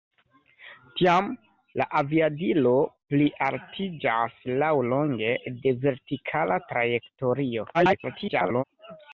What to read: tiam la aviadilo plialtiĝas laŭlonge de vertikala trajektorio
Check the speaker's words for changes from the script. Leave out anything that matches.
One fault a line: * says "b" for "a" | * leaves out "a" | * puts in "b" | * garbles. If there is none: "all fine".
* garbles